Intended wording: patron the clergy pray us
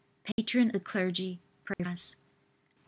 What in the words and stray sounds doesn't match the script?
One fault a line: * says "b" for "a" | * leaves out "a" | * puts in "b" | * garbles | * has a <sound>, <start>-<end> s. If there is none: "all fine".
* has a dropout, 0.3-0.4 s
* has a dropout, 1.7-1.8 s